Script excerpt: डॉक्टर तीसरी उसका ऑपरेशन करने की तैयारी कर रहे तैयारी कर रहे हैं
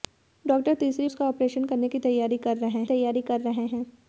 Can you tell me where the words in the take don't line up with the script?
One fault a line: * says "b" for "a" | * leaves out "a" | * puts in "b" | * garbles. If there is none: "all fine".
all fine